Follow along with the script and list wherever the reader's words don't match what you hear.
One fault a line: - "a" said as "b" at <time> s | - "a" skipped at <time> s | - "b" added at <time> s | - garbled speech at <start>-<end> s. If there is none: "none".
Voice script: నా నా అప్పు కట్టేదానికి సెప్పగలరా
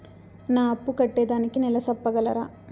- "నా" skipped at 0.6 s
- "నెల" added at 1.6 s